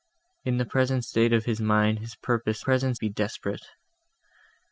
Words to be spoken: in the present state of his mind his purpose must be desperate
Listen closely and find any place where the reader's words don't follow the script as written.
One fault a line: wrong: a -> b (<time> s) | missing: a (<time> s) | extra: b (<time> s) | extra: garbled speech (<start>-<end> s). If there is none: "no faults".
wrong: must -> present (2.6 s)